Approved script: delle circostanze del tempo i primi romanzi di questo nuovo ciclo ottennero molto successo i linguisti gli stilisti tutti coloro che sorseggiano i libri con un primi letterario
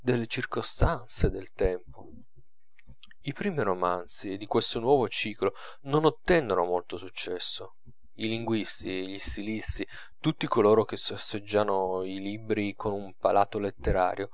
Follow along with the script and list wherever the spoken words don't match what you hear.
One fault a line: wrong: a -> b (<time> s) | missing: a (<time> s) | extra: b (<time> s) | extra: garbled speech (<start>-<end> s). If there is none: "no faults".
extra: non (5.8 s)
wrong: primi -> palato (13.2 s)